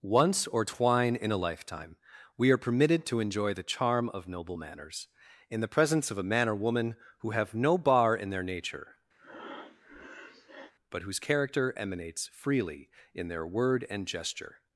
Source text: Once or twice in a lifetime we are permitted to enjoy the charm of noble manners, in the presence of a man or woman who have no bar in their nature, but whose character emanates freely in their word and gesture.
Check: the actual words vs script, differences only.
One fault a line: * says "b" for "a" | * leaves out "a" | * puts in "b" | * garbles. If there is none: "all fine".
* says "twine" for "twice"